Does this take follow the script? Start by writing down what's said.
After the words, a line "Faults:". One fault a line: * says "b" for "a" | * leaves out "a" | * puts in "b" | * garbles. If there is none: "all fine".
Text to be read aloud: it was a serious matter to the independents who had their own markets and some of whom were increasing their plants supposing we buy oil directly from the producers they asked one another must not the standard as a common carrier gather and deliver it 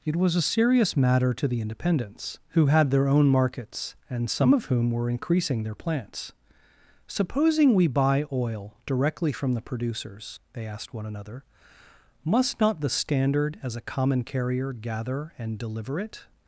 it was a serious matter to the independents who had their own markets and some of whom were increasing their plants supposing we buy oil directly from the producers they asked one another must not the standard as a common carrier gather and deliver it
Faults:
all fine